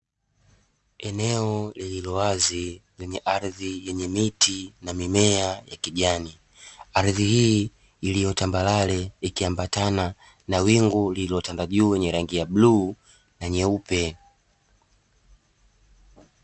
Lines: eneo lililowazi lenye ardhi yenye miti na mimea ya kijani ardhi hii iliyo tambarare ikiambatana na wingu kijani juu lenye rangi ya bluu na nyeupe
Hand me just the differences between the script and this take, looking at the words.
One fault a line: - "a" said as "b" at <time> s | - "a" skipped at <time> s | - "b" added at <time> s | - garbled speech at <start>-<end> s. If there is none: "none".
- "kijani" said as "lililotanda" at 11.1 s